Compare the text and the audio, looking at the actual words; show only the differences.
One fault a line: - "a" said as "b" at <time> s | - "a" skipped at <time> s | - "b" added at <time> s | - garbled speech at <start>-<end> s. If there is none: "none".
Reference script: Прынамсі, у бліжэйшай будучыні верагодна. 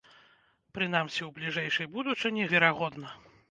none